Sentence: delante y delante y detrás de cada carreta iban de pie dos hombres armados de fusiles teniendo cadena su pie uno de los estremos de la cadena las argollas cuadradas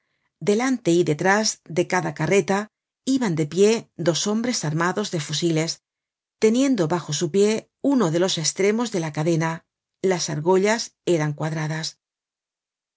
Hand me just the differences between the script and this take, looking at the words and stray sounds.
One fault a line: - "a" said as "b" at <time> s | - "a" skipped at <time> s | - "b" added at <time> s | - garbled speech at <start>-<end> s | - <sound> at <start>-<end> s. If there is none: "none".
- "delante y" skipped at 1.0 s
- "cadena" said as "bajo" at 6.9 s
- "eran" added at 11.1 s